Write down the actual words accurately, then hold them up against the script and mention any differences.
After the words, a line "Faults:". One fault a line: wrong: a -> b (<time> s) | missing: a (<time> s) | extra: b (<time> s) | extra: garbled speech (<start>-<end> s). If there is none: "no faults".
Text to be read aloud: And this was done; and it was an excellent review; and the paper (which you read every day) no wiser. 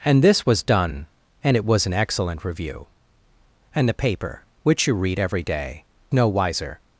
And this was done; and it was an excellent review; and the paper (which you read every day) no wiser.
Faults:
no faults